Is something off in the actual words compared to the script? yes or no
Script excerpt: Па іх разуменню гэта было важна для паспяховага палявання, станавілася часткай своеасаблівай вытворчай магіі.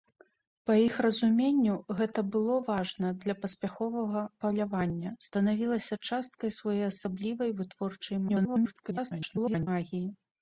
yes